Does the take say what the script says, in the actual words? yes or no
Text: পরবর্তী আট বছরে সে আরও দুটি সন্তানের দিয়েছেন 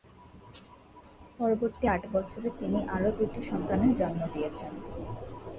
no